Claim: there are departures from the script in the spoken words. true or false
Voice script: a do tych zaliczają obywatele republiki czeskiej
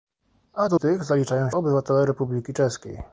false